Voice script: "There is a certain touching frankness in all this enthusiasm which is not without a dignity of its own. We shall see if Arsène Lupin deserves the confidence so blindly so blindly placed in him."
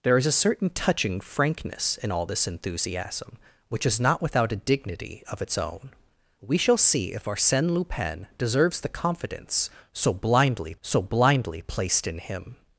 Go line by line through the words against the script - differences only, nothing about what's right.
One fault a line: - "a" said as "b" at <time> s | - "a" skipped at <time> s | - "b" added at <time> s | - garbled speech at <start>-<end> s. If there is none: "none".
none